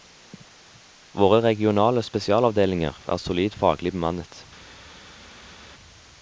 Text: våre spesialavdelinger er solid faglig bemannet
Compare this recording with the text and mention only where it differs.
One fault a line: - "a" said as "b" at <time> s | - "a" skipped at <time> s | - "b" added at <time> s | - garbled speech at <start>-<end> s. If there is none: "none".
- "regionale" added at 1.4 s